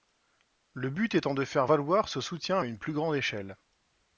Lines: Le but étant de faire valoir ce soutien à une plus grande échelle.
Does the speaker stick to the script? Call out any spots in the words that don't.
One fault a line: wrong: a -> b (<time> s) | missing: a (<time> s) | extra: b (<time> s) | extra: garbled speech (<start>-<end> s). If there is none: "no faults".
no faults